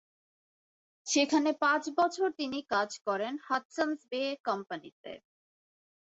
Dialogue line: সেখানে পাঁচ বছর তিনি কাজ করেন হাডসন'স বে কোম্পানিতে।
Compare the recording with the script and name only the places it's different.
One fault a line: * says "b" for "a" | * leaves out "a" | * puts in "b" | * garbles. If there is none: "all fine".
all fine